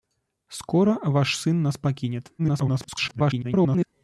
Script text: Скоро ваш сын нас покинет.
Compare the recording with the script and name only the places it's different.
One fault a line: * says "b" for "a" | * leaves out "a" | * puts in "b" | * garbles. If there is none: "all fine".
* garbles